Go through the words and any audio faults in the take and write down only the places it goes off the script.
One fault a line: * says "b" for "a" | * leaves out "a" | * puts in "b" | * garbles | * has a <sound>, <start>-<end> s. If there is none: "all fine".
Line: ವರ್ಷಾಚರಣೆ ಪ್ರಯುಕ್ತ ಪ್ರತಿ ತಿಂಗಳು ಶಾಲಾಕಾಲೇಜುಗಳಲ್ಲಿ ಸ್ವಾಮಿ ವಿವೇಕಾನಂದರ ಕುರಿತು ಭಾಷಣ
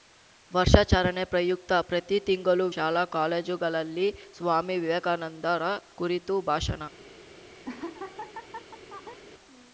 * has a laugh, 7.6-9.2 s